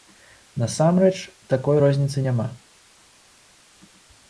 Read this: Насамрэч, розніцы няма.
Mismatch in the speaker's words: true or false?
true